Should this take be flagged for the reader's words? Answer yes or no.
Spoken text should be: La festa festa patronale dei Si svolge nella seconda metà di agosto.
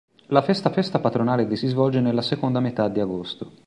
no